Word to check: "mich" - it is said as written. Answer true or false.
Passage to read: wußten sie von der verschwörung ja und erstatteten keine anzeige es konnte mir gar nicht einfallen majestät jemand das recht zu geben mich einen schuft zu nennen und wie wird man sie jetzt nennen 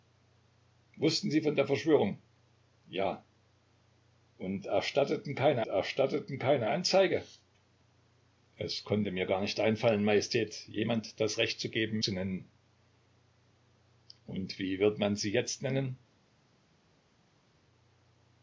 false